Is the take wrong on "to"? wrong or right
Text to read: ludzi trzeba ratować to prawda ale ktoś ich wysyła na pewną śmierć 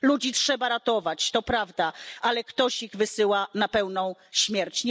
right